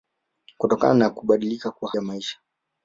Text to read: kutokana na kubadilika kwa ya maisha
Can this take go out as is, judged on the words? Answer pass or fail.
pass